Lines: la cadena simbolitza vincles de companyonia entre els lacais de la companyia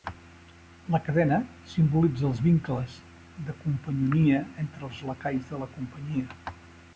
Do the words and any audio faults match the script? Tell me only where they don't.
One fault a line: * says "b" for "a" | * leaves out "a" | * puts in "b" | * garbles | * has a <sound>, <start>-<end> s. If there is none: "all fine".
* puts in "els"